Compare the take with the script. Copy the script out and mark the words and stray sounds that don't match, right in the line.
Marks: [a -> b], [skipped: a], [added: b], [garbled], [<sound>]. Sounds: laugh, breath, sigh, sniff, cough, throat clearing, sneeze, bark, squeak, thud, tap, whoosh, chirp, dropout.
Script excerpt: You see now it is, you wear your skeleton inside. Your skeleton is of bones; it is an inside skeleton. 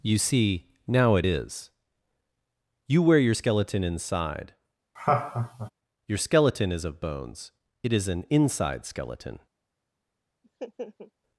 You see now it is, you wear your skeleton inside. [laugh] Your skeleton is of bones; it is an inside skeleton. [laugh]